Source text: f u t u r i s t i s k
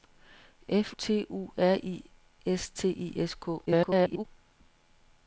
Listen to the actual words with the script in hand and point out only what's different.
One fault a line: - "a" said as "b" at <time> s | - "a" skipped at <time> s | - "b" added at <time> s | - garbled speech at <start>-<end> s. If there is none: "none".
- "u" skipped at 0.9 s
- garbled speech at 3.7-4.2 s